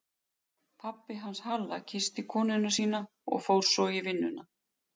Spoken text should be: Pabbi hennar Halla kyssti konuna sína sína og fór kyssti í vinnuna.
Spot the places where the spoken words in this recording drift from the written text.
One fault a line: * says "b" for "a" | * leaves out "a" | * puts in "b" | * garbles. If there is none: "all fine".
* says "hans" for "hennar"
* leaves out "sína"
* says "svo" for "kyssti"